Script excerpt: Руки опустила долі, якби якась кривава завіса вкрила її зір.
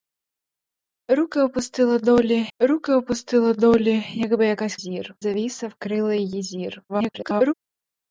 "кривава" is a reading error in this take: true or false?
true